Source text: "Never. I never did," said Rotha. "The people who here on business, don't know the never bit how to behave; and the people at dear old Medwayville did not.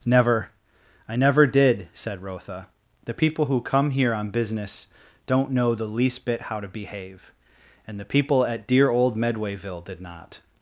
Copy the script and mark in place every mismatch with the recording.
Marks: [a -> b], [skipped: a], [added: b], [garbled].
"Never. I never did," said Rotha. "The people who [added: come] here on business, don't know the [never -> least] bit how to behave; and the people at dear old Medwayville did not.